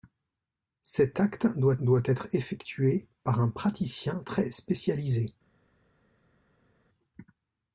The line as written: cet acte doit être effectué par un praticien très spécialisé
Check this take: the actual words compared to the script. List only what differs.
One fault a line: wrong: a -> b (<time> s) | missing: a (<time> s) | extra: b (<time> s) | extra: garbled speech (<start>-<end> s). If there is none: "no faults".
extra: doit (1.8 s)